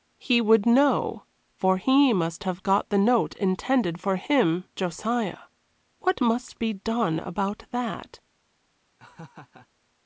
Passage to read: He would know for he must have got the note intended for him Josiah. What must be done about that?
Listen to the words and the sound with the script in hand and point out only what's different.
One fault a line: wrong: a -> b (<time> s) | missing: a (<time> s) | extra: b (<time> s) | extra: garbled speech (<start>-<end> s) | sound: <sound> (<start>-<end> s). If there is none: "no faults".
sound: laugh (9.0-9.7 s)